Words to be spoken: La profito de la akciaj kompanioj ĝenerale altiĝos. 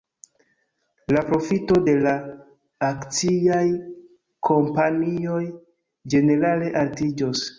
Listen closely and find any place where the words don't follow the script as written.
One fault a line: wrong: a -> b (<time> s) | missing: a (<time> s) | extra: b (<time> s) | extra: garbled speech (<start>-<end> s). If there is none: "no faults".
no faults